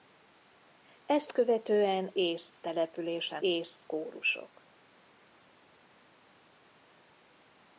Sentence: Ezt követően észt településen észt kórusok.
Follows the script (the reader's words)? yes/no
yes